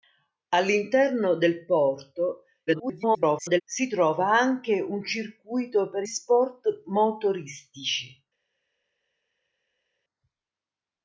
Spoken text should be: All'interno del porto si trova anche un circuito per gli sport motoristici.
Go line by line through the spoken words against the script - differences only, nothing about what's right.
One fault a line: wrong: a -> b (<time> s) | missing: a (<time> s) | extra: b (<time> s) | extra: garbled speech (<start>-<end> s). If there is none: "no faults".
extra: garbled speech (2.7-3.6 s)
missing: gli (6.0 s)